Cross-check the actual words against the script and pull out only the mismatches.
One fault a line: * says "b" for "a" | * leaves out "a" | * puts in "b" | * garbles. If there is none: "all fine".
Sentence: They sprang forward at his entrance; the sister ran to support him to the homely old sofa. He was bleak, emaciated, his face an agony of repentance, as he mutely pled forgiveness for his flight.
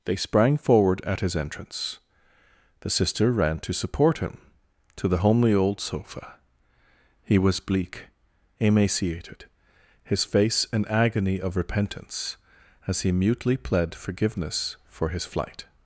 all fine